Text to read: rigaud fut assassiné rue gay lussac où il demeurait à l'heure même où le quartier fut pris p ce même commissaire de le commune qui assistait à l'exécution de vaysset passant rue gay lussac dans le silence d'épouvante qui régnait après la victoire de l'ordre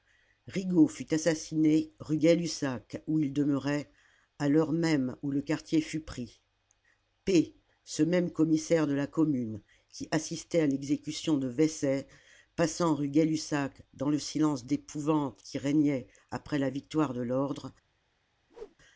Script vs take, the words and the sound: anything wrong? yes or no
yes